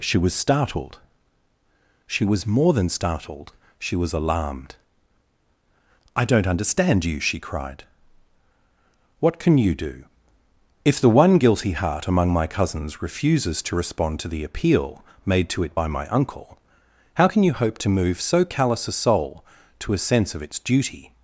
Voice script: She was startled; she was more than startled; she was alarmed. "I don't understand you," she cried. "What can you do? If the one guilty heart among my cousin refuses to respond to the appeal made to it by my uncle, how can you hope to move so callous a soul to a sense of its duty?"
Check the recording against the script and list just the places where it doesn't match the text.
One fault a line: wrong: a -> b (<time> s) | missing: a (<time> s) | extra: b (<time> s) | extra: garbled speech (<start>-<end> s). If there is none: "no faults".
wrong: cousin -> cousins (12.5 s)